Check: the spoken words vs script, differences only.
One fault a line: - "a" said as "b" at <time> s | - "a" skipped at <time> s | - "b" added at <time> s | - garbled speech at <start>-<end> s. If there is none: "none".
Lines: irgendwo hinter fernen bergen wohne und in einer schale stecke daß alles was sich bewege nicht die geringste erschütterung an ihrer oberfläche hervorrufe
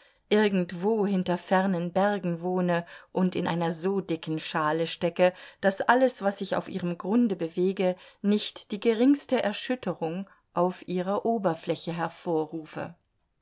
- "so dicken" added at 3.7 s
- "auf ihrem grunde" added at 6.5 s
- "an" said as "auf" at 10.6 s